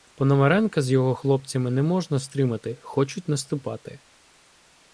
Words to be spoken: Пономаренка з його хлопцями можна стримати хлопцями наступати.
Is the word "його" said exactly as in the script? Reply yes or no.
yes